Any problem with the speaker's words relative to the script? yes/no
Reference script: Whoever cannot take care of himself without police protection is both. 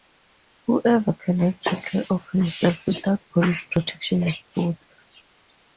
no